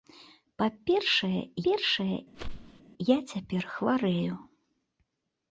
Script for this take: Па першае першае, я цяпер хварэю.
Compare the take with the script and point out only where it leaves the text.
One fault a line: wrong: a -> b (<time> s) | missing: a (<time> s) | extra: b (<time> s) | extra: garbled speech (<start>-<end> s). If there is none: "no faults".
no faults